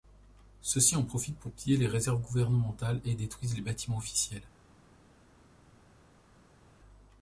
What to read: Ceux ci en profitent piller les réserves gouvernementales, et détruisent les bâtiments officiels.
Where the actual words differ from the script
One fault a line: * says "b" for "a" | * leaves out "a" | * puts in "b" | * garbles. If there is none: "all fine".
* puts in "pour"